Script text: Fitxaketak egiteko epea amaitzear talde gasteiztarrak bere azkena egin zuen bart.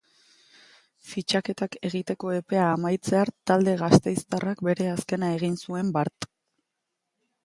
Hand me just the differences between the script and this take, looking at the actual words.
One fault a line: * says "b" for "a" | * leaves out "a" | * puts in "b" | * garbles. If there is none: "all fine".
all fine